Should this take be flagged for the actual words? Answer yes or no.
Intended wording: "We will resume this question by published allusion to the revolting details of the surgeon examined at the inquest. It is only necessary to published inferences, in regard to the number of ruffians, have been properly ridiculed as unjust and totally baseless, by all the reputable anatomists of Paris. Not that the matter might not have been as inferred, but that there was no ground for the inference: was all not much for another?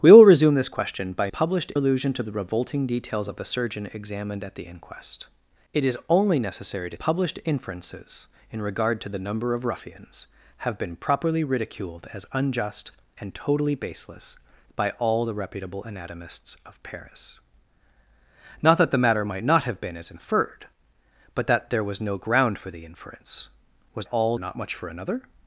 no